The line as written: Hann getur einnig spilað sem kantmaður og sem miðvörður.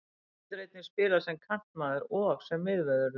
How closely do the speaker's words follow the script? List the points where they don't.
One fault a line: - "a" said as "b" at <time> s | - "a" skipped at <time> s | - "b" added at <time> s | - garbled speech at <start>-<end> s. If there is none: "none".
none